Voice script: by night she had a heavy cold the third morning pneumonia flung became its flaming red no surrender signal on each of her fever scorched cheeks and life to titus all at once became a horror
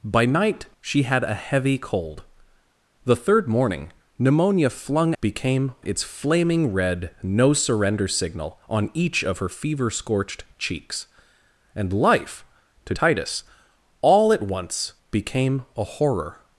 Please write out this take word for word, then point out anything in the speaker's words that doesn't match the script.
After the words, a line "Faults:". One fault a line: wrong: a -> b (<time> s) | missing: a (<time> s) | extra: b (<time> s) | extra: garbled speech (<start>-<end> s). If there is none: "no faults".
by night she had a heavy cold the third morning pneumonia flung became its flaming red no surrender signal on each of her fever scorched cheeks and life to titus all at once became a horror
Faults:
no faults